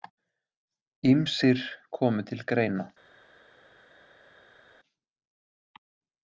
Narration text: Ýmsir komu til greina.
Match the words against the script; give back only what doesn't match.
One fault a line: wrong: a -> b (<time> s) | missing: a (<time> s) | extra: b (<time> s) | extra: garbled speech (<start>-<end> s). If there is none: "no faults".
no faults